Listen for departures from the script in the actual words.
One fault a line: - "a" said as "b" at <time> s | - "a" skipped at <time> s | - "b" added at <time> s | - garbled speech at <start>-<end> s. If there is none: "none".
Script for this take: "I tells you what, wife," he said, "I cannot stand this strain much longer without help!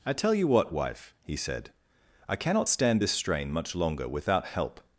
- "tells" said as "tell" at 0.1 s